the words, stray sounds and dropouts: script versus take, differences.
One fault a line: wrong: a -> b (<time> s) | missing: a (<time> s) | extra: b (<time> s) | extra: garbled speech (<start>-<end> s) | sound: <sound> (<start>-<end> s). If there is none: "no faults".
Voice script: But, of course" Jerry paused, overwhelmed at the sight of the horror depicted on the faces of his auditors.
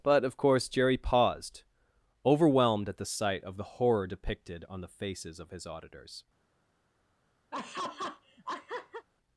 sound: laugh (7.5-9.1 s)